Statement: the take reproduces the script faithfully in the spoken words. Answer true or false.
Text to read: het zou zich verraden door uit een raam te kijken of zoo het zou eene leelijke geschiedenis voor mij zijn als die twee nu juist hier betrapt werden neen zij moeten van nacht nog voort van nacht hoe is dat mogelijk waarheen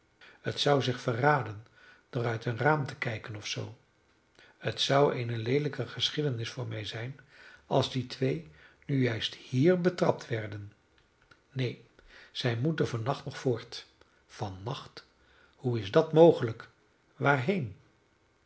true